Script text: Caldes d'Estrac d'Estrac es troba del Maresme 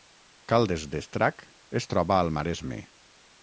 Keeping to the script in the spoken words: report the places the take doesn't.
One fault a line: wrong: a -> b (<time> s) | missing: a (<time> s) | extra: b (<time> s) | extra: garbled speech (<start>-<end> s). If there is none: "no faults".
missing: d'Estrac (1.4 s)
wrong: del -> al (2.2 s)